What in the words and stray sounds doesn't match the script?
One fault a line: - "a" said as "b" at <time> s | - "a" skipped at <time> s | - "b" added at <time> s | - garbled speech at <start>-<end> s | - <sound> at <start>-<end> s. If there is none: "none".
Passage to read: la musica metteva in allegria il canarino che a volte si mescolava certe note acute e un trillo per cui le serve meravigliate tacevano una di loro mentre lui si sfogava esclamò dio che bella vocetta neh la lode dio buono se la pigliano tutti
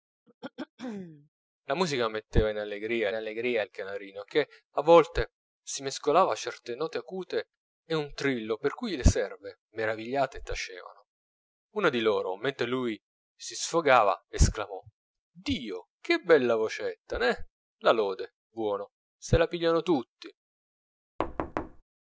- throat clearing at 0.3-1.3 s
- "allegria" added at 3.1 s
- "dio" skipped at 18.4 s
- thud at 21.2-21.8 s